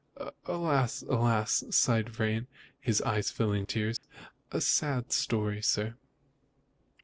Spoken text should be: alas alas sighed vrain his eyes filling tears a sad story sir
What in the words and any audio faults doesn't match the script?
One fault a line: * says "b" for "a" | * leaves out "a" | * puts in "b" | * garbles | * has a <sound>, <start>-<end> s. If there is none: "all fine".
* has a dropout, 4.0-4.0 s